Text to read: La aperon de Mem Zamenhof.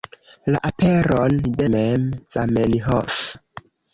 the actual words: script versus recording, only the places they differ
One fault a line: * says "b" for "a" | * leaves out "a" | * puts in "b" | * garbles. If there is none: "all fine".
all fine